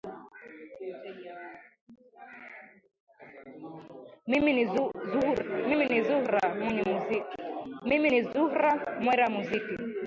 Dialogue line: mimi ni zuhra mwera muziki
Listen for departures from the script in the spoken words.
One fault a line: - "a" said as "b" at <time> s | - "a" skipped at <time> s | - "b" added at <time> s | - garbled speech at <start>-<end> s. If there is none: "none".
none